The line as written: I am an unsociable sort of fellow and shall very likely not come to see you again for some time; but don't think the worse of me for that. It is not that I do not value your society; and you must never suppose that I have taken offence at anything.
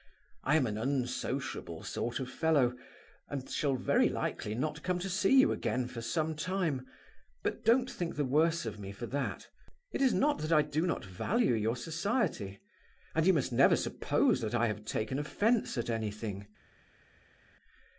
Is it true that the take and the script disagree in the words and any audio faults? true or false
false